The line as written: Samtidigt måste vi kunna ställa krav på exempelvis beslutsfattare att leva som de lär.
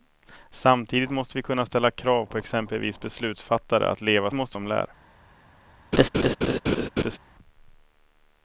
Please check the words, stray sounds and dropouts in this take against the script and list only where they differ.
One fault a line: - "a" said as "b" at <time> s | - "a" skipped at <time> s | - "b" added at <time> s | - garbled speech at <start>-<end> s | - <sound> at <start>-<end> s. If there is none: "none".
- "som" said as "måste" at 4.3 s
- laugh at 5.9-7.2 s